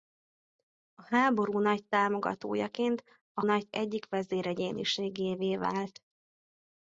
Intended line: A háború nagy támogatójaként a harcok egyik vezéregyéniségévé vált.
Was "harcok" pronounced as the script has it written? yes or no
no